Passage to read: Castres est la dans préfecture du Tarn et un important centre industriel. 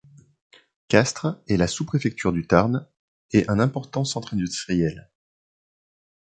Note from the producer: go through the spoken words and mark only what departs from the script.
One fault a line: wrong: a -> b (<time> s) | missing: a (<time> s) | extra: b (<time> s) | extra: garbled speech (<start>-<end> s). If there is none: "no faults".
wrong: dans -> sous (1.7 s)